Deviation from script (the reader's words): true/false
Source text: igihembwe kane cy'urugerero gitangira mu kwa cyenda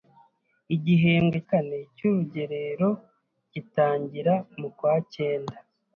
false